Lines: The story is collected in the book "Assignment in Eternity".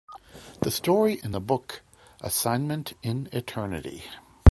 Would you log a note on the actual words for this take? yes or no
yes